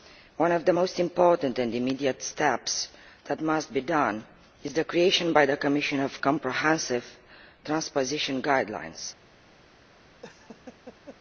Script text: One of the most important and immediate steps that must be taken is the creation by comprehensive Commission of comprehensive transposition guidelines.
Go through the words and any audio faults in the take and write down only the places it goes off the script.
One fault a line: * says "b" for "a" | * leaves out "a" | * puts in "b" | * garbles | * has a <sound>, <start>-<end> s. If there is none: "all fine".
* says "the" for "comprehensive"
* has a laugh, 10.2-11.2 s